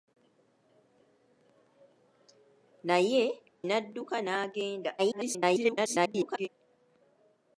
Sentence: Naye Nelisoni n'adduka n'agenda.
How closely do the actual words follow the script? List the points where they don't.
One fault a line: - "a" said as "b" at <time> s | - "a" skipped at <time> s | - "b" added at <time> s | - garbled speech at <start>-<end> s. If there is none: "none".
- "Nelisoni" skipped at 3.2 s
- garbled speech at 5.0-6.5 s